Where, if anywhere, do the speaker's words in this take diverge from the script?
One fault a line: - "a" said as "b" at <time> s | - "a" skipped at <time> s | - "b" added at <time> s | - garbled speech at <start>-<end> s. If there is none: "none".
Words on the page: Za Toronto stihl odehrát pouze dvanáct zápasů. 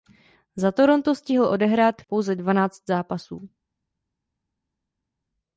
none